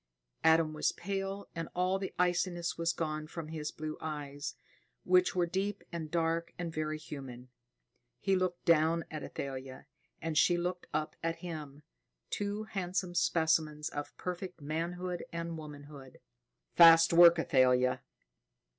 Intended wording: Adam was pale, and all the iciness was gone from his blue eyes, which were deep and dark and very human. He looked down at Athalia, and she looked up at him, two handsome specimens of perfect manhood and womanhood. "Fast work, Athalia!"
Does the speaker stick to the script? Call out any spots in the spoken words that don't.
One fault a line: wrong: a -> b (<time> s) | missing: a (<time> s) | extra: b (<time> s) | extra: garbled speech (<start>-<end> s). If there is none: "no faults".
no faults